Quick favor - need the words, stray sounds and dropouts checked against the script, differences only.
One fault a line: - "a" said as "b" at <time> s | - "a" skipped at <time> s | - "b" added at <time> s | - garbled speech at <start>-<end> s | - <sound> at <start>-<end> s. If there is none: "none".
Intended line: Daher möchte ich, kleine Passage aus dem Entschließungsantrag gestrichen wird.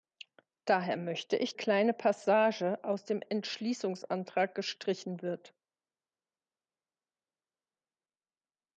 none